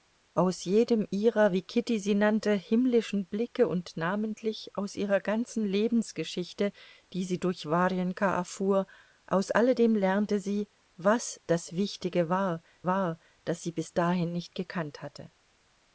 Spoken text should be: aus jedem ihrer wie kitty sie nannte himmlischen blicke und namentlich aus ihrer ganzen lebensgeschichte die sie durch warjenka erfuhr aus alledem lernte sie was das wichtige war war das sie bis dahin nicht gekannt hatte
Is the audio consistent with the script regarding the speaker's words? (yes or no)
yes